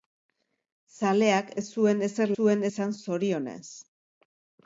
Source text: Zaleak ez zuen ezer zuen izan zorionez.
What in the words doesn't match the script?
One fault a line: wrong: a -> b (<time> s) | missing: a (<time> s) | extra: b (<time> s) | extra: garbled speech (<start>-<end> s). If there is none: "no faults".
no faults